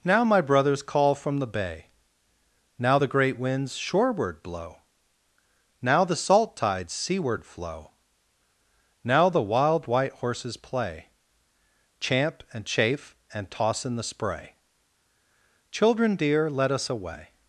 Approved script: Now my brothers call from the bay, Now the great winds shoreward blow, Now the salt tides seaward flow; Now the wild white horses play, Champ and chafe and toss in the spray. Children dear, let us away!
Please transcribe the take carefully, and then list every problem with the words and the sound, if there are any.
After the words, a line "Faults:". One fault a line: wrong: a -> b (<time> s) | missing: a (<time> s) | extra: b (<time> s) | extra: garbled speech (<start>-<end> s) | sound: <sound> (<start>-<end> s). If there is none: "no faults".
Now my brothers call from the bay, Now the great winds shoreward blow, Now the salt tides seaward flow; Now the wild white horses play, Champ and chafe and toss in the spray. Children dear, let us away!
Faults:
no faults